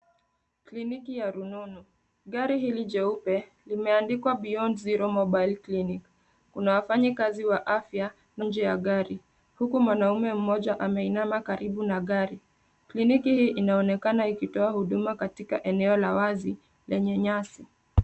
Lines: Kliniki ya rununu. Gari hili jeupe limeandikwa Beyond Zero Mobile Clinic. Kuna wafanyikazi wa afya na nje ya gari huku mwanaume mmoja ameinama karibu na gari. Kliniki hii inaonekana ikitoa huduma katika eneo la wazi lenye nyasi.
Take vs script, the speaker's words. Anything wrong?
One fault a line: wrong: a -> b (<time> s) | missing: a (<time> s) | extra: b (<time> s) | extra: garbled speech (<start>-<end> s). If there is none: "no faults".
no faults